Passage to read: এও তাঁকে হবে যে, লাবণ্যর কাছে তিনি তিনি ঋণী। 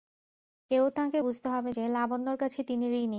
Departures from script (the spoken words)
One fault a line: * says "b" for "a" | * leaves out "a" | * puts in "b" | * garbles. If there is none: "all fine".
* puts in "বুঝতে"
* leaves out "তিনি"